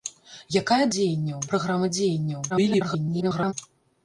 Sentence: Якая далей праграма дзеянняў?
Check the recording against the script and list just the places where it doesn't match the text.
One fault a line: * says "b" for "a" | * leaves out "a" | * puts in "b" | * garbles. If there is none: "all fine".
* says "дзеянняў" for "далей"
* garbles